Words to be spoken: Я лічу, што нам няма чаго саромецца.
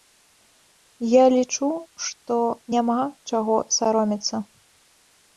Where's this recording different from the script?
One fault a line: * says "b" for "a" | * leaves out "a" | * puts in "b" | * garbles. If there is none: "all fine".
* leaves out "нам"